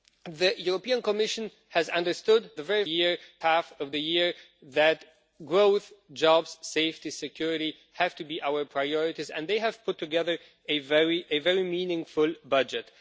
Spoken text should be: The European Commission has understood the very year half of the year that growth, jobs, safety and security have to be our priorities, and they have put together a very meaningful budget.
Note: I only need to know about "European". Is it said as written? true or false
true